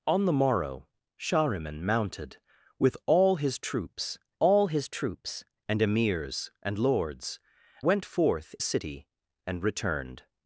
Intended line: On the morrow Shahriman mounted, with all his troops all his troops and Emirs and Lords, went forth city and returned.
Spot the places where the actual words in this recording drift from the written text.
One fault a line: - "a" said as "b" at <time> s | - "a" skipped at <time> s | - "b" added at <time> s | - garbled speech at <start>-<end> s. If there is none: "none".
none